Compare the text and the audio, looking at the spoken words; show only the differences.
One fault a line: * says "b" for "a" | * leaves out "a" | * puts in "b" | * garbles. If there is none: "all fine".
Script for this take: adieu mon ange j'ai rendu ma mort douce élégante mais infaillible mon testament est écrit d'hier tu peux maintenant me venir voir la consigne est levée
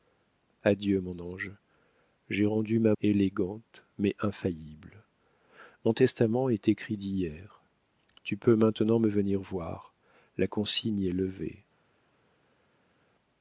* leaves out "mort douce"